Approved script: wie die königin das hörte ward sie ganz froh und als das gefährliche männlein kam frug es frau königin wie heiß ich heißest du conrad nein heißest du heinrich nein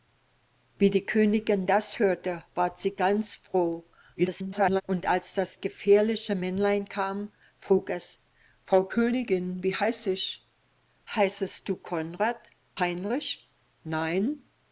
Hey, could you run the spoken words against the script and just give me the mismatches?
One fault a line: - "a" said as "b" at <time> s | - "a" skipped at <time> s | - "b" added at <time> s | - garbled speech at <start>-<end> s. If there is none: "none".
- garbled speech at 4.2-4.8 s
- "nein heißest du" skipped at 12.5 s